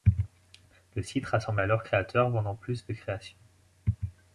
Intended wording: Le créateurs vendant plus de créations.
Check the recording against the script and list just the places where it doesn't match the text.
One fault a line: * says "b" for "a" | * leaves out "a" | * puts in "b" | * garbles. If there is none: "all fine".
* puts in "site rassemble alors"